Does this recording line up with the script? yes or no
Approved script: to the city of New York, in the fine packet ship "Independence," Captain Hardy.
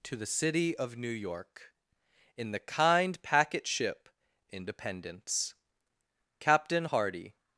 no